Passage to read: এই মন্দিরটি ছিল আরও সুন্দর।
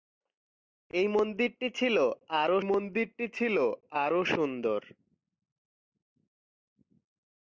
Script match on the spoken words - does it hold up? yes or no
no